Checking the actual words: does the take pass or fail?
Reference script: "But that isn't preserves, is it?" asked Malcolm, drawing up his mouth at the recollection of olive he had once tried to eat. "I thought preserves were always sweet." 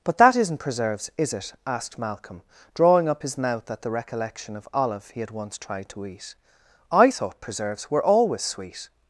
pass